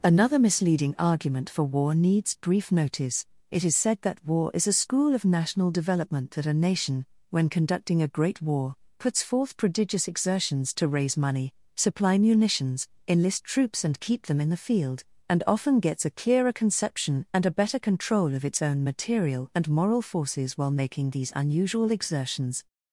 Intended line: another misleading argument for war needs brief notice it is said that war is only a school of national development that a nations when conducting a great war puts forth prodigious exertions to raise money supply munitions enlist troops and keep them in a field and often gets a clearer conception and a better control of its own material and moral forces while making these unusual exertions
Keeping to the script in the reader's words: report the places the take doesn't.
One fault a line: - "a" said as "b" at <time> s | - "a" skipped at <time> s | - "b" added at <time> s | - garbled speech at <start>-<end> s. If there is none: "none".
- "only" skipped at 4.7 s
- "nations" said as "nation" at 6.5 s
- "a" said as "the" at 14.5 s